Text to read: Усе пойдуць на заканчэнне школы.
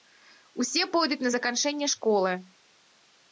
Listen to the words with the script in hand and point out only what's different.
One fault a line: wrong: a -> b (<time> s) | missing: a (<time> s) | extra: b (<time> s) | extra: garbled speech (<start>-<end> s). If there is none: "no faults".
no faults